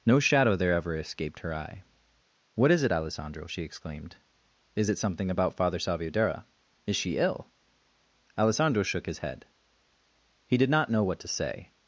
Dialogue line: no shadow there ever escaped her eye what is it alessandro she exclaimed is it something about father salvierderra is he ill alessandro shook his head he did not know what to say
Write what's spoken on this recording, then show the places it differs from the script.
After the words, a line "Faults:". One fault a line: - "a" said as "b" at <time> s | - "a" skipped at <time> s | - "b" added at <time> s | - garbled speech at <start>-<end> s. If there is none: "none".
no shadow there ever escaped her eye what is it alessandro she exclaimed is it something about father salvierderra is she ill alessandro shook his head he did not know what to say
Faults:
- "he" said as "she" at 6.9 s